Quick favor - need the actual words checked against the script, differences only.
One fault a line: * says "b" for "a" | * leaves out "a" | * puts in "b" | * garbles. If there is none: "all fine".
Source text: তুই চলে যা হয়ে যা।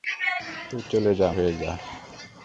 all fine